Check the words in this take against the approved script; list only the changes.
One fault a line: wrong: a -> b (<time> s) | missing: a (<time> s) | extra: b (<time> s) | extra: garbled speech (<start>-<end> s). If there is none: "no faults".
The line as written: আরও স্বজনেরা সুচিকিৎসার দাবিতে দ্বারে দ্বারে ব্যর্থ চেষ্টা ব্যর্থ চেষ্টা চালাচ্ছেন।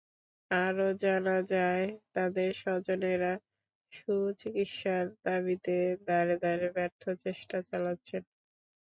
extra: জানা যায় তাঁদের (1.0 s)
missing: ব্যর্থ চেষ্টা (7.6 s)